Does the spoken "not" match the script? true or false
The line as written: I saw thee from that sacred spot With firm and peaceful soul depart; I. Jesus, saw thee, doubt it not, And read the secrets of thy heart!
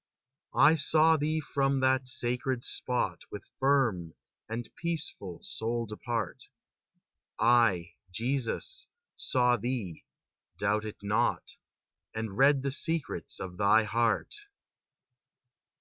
true